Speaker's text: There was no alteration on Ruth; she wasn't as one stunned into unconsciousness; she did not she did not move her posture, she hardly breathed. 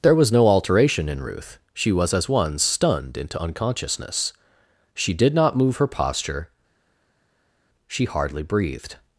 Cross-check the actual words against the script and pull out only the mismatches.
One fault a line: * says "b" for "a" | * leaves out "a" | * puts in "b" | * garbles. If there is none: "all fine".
* says "in" for "on"
* says "was" for "wasn't"
* leaves out "she did not"